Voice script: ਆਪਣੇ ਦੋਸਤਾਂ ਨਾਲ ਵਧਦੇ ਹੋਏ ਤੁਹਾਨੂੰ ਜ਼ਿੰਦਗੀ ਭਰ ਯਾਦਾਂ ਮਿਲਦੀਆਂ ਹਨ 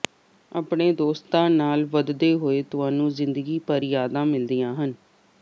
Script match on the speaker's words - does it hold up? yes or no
yes